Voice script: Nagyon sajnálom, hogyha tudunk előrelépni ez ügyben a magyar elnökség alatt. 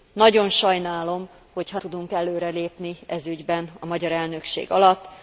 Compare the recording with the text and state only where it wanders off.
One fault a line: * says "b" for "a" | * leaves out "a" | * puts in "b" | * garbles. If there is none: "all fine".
all fine